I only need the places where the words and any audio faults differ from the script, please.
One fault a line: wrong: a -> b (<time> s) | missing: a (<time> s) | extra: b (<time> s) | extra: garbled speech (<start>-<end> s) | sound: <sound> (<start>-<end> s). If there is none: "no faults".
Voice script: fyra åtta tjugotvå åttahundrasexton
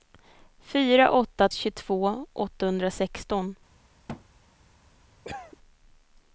sound: thud (4.1-4.2 s)
sound: cough (5.2-5.6 s)